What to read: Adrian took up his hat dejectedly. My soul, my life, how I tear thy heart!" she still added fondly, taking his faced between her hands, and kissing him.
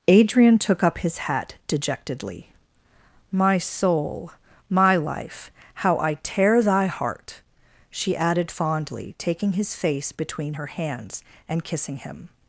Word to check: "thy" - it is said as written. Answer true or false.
true